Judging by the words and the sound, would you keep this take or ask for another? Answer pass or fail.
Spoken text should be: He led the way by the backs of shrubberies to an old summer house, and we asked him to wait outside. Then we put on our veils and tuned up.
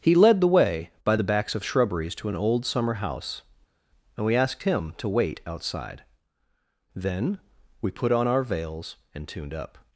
pass